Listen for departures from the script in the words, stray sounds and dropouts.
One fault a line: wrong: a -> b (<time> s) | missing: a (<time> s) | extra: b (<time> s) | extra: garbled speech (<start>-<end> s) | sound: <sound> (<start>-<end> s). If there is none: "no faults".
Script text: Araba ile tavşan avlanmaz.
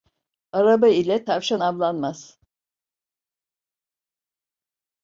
no faults